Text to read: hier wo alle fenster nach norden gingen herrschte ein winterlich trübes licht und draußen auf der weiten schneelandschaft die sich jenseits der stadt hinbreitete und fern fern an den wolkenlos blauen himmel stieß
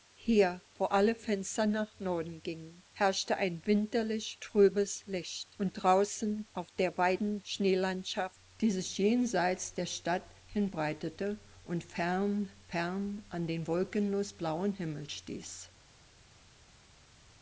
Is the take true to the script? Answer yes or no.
yes